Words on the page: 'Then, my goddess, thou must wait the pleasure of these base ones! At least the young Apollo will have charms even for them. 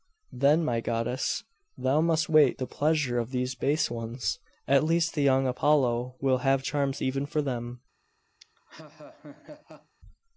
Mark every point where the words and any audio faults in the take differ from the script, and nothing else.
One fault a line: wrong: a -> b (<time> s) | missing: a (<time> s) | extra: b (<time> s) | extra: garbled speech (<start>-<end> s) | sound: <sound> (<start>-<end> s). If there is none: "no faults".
sound: laugh (8.4-9.9 s)